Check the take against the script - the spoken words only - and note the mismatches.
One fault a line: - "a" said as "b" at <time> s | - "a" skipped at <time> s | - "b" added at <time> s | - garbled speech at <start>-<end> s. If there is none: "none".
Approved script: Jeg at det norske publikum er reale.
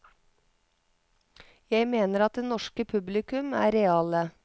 - "mener" added at 1.9 s